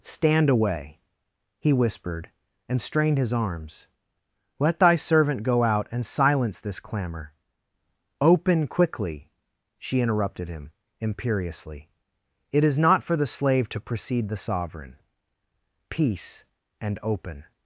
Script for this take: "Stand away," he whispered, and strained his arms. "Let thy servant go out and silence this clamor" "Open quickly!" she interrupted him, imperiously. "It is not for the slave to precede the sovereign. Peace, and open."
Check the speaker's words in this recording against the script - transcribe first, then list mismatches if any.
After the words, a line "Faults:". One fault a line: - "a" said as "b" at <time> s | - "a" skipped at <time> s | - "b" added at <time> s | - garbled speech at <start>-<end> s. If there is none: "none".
"Stand away," he whispered, and strained his arms. "Let thy servant go out and silence this clamor" "Open quickly!" she interrupted him, imperiously. "It is not for the slave to precede the sovereign. Peace, and open."
Faults:
none